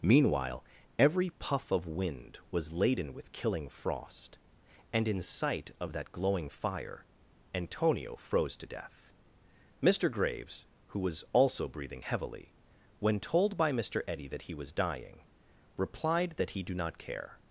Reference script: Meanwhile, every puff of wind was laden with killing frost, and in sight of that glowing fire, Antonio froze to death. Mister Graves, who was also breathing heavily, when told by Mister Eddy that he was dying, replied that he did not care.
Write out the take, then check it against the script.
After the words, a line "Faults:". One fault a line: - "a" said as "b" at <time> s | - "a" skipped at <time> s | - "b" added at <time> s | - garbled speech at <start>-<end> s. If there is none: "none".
Meanwhile, every puff of wind was laden with killing frost, and in sight of that glowing fire, Antonio froze to death. Mister Graves, who was also breathing heavily, when told by Mister Eddy that he was dying, replied that he do not care.
Faults:
- "did" said as "do" at 16.6 s